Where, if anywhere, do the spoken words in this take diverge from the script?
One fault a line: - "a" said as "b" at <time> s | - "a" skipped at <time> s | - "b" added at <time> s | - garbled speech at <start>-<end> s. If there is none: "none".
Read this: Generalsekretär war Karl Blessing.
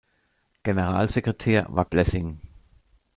- "Karl" skipped at 1.9 s